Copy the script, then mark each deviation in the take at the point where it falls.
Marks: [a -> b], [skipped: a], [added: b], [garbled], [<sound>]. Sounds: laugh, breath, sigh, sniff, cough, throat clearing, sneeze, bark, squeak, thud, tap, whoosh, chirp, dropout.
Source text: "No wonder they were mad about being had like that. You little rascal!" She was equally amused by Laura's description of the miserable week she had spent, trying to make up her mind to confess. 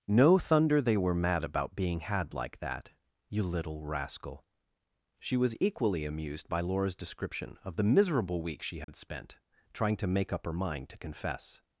"No [wonder -> thunder] they were mad about being had like that. You little rascal!" She was equally amused by Laura's description of the miserable week she had [dropout] spent, trying to make up her mind to confess.